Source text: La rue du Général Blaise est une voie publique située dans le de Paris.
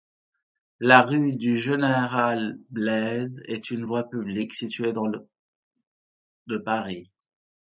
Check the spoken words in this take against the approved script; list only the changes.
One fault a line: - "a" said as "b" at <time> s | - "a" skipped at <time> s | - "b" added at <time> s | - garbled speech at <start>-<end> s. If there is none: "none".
none